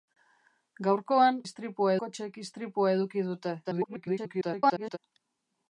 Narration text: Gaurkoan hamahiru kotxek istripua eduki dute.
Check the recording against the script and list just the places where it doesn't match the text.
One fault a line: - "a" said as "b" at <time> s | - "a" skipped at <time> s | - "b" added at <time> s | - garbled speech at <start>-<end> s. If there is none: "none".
- "hamahiru" said as "istripua" at 1.5 s
- garbled speech at 3.6-5.0 s